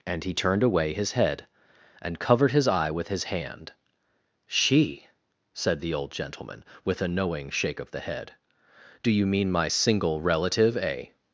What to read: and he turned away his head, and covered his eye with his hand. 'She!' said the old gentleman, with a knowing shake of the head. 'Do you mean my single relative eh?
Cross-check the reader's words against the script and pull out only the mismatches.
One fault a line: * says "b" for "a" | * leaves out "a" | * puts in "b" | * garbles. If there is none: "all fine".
all fine